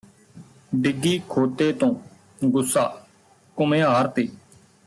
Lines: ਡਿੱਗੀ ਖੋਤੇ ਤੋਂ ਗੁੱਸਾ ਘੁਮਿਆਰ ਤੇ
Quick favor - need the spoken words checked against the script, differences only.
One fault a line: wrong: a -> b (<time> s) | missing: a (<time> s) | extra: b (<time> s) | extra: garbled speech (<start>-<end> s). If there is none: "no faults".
no faults